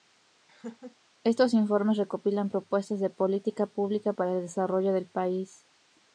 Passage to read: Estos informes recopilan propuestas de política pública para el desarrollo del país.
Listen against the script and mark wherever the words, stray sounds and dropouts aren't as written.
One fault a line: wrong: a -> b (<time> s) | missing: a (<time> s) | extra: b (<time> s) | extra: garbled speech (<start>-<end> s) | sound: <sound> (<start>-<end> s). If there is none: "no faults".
sound: laugh (0.5-1.0 s)